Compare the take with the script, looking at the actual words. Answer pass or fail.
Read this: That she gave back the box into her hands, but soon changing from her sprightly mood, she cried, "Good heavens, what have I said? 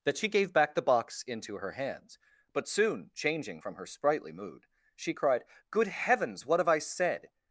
pass